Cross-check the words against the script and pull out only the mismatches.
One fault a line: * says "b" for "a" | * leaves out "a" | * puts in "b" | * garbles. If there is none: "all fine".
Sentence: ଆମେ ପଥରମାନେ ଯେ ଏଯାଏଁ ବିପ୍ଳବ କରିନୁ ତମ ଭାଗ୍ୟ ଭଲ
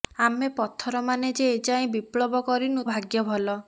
* leaves out "ତମ"